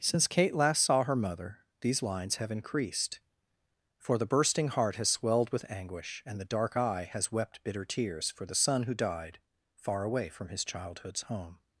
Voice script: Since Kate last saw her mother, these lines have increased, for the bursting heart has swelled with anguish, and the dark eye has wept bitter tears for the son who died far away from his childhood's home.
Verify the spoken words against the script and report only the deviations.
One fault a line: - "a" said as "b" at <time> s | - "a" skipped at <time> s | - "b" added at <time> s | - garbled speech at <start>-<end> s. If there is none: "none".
none